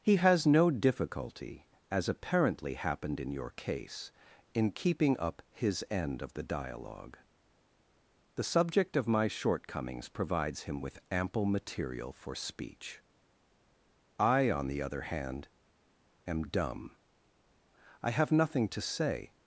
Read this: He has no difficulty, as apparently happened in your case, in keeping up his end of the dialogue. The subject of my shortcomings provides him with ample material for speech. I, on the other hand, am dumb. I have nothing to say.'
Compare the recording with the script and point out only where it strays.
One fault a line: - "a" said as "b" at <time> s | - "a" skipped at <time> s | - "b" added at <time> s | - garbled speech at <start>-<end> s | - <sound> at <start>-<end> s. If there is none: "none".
none